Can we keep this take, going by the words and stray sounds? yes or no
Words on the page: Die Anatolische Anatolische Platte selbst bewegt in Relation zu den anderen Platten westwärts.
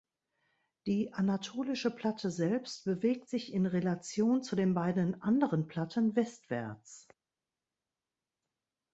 no